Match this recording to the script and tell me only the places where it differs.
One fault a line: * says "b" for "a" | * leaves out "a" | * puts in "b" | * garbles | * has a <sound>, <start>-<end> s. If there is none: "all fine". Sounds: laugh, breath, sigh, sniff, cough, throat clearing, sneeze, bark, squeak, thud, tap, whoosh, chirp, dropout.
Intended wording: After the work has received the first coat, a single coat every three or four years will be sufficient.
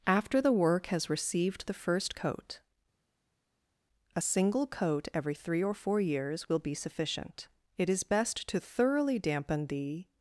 * puts in "It is best to thoroughly dampen the"